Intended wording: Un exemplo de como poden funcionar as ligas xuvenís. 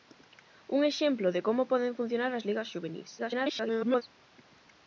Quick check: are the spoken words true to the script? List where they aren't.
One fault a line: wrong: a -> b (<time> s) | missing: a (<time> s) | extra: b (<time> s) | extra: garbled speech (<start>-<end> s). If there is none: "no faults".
extra: garbled speech (3.2-4.0 s)